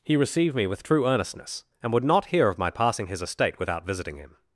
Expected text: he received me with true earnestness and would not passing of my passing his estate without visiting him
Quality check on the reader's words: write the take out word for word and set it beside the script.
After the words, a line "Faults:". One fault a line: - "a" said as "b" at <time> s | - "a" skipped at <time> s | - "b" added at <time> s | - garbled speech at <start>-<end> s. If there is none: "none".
he received me with true earnestness and would not hear of my passing his estate without visiting him
Faults:
- "passing" said as "hear" at 2.2 s